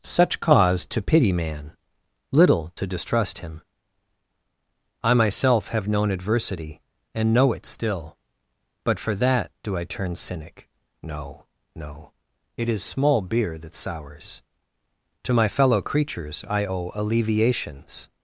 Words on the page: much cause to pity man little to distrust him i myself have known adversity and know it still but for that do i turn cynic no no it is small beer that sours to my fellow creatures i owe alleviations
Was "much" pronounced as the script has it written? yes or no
no